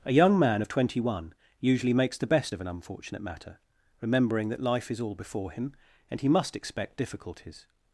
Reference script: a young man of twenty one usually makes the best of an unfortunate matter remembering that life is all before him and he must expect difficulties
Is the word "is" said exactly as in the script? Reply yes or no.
yes